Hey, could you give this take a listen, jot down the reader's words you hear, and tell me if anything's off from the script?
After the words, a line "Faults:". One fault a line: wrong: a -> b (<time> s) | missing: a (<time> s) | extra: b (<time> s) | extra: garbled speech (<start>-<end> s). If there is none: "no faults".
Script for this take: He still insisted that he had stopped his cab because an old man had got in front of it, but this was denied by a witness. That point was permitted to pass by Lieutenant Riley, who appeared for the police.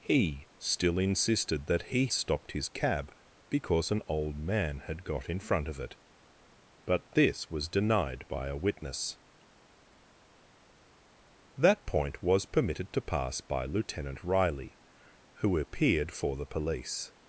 He still insisted that he stopped his cab because an old man had got in front of it, but this was denied by a witness. That point was permitted to pass by Lieutenant Riley, who appeared for the police.
Faults:
missing: had (2.1 s)